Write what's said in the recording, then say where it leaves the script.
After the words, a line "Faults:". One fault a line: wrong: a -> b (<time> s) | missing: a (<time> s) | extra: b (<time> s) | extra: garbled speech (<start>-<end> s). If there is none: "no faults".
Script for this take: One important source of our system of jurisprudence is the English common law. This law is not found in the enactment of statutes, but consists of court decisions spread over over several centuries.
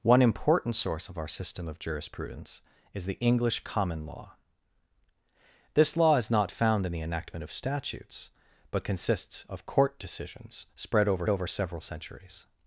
One important source of our system of jurisprudence is the English common law. This law is not found in the enactment of statutes, but consists of court decisions spread over over several centuries.
Faults:
no faults